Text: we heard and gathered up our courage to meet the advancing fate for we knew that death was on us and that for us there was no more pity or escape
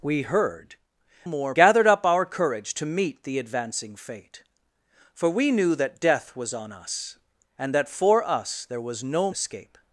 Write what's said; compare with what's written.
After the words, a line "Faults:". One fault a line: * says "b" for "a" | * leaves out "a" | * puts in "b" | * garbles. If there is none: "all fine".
we heard more gathered up our courage to meet the advancing fate for we knew that death was on us and that for us there was no escape
Faults:
* says "more" for "and"
* leaves out "more pity or"